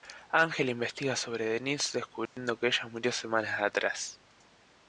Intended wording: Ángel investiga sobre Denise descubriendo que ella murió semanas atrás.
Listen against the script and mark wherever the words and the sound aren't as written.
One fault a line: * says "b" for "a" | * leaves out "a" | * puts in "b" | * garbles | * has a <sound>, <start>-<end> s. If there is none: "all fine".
* has a dropout, 2.3-2.4 s